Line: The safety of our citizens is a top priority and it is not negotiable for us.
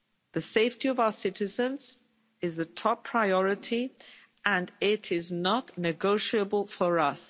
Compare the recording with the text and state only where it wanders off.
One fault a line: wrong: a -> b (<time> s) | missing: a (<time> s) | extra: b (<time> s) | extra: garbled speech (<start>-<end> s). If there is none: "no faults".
no faults